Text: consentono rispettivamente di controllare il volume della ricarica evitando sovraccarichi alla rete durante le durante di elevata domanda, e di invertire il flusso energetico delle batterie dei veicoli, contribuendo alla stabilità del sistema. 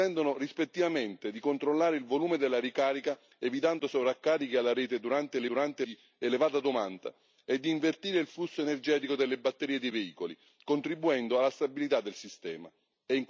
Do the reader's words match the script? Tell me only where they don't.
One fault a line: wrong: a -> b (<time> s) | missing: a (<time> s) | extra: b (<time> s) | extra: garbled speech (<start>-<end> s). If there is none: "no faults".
no faults